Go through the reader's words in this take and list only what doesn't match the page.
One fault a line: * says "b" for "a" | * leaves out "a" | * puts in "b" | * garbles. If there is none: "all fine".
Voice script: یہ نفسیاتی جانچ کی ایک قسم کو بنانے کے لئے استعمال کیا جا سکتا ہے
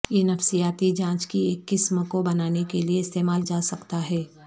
* leaves out "کیا"